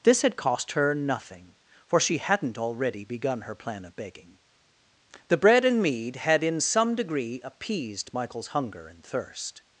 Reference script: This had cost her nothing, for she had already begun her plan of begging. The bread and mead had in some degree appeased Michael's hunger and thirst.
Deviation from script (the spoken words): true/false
true